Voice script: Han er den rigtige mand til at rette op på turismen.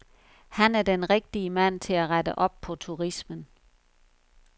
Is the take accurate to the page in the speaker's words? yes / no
yes